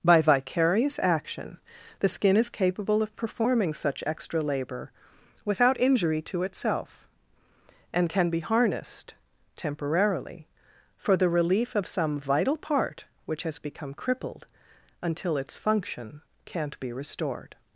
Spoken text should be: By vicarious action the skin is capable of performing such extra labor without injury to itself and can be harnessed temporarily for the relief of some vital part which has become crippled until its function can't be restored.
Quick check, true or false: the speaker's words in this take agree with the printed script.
true